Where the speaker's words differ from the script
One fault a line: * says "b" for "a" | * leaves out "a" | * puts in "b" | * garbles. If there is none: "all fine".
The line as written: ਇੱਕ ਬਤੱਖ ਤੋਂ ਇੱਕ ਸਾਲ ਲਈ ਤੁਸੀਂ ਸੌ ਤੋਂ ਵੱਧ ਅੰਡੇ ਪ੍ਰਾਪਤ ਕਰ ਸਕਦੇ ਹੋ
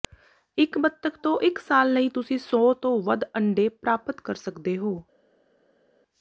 all fine